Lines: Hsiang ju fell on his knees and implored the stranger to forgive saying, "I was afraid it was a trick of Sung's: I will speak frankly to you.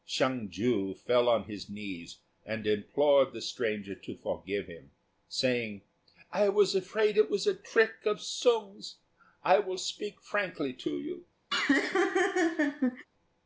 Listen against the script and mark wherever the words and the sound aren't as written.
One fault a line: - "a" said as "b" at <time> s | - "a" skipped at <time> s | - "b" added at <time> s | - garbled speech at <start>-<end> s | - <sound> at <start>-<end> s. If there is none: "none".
- "him" added at 4.7 s
- laugh at 11.5-13.1 s